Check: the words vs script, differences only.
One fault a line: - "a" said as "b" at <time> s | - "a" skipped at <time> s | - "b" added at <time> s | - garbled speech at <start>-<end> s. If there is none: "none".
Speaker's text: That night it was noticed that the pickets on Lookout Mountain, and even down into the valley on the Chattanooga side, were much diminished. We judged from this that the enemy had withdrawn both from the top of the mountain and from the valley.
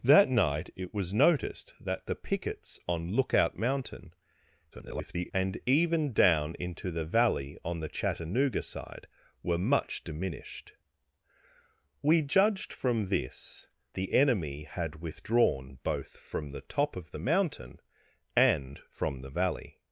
- garbled speech at 4.7-5.3 s
- "that" skipped at 13.7 s